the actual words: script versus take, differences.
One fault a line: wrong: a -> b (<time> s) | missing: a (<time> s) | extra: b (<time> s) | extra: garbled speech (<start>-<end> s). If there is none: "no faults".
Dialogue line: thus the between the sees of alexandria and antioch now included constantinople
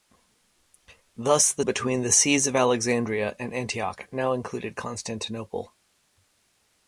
no faults